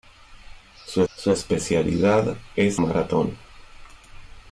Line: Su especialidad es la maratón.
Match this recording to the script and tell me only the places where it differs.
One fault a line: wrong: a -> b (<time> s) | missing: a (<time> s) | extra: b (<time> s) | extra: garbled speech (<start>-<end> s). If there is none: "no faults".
extra: su (1.1 s)
missing: la (2.8 s)